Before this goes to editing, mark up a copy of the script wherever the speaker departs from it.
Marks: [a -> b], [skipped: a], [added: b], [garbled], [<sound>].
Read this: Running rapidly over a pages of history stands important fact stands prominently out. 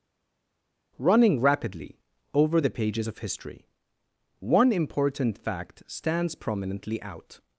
Running rapidly over [a -> the] pages of history [stands -> one] important fact stands prominently out.